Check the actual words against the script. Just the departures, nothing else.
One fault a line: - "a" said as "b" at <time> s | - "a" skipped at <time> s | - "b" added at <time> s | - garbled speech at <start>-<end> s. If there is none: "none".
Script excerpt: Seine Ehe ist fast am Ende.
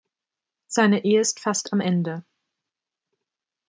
none